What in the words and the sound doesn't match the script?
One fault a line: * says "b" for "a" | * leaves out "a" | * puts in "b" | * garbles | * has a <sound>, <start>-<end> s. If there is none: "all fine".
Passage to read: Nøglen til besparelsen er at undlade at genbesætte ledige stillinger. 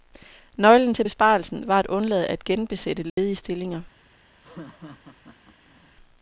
* says "var" for "er"
* has a dropout, 3.1-3.2 s
* has a laugh, 4.4-5.9 s